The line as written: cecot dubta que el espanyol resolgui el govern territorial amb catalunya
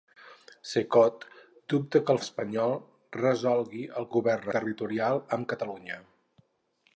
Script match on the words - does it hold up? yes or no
yes